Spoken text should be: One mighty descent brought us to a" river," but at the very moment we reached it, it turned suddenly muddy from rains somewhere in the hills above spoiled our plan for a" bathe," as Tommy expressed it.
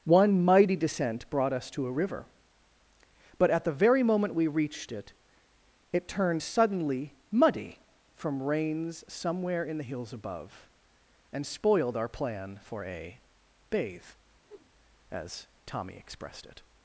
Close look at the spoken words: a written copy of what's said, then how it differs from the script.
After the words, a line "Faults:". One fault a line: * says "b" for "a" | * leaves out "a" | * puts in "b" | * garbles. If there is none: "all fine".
One mighty descent brought us to a" river," but at the very moment we reached it, it turned suddenly muddy from rains somewhere in the hills above and spoiled our plan for a" bathe," as Tommy expressed it.
Faults:
* puts in "and"